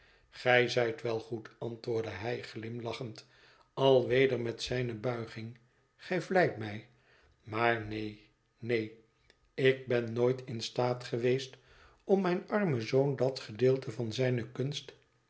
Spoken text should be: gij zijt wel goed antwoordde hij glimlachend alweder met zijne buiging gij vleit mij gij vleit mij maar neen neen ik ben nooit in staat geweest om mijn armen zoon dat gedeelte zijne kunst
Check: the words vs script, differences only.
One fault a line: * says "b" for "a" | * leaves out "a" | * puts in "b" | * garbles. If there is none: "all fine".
* leaves out "gij vleit mij"
* puts in "van"